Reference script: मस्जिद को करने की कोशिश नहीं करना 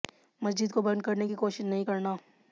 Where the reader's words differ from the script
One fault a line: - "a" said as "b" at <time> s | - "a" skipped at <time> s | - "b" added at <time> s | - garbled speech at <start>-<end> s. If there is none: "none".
- "बंद" added at 0.8 s